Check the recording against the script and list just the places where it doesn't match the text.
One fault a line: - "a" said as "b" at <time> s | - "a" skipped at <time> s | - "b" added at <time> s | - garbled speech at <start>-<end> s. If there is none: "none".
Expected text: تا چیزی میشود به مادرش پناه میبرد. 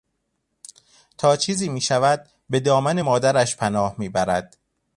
- "دامن" added at 2.6 s